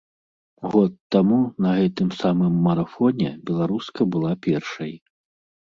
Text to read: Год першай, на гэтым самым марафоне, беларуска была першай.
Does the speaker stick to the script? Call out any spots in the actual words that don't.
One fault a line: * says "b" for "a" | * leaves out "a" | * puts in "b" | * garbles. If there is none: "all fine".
* says "таму" for "першай"